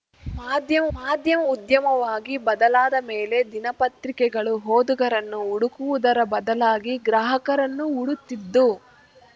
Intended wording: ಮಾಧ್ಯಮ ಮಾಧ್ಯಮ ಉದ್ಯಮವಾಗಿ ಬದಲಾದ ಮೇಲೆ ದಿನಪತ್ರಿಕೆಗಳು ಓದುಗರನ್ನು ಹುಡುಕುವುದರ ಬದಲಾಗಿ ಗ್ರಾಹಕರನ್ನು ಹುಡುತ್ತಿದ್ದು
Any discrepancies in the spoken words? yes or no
no